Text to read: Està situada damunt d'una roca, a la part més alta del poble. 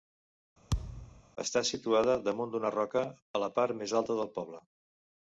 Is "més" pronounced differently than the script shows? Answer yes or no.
no